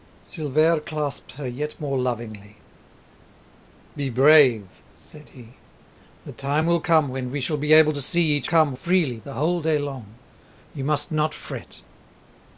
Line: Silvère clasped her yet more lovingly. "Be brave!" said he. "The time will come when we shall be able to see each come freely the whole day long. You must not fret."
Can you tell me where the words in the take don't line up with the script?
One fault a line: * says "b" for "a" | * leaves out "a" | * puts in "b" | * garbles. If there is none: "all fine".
all fine